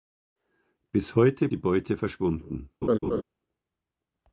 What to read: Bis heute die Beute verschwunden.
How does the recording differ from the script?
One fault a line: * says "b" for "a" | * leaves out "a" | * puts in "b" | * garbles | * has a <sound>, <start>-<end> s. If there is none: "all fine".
* has a laugh, 2.8-3.2 s